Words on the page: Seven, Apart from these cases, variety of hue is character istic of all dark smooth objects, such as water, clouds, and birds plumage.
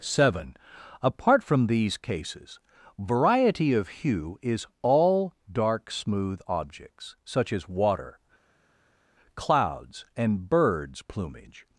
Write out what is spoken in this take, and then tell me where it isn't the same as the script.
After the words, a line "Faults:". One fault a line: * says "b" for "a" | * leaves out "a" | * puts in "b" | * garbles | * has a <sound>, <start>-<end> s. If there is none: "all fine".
Seven, Apart from these cases, variety of hue is all dark smooth objects, such as water, clouds, and birds plumage.
Faults:
* leaves out "character istic of"